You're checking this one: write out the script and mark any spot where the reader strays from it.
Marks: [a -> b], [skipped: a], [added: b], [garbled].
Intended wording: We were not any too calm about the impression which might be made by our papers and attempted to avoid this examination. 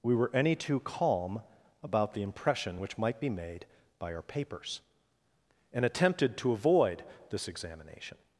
We were [skipped: not] any too calm about the impression which might be made by our papers and attempted to avoid this examination.